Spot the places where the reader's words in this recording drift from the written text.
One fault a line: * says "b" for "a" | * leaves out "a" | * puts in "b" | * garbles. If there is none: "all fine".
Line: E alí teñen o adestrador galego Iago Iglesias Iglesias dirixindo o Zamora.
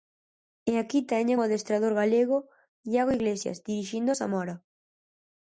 * says "aquí" for "alí"
* leaves out "Iglesias"